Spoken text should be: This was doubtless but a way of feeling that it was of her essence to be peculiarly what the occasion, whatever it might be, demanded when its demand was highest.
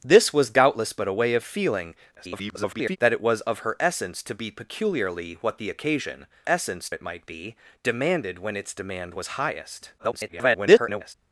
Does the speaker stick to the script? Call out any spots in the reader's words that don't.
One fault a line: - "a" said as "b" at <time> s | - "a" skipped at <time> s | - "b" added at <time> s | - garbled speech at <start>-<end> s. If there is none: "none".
- garbled speech at 2.2-3.0 s
- "whatever" said as "essence" at 6.5 s
- garbled speech at 10.0-11.1 s